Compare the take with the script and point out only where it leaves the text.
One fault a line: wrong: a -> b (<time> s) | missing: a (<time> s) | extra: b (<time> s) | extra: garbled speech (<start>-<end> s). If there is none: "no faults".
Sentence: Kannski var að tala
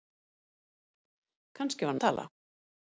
no faults